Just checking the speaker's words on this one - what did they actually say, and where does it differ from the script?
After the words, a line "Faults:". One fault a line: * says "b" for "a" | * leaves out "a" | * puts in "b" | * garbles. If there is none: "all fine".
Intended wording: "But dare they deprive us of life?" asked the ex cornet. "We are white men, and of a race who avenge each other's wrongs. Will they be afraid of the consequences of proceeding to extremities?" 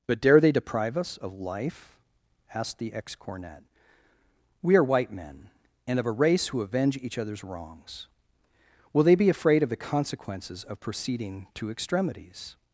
"But dare they deprive us of life?" asked the ex cornet. "We are white men, and of a race who avenge each other's wrongs. Will they be afraid of the consequences of proceeding to extremities?"
Faults:
all fine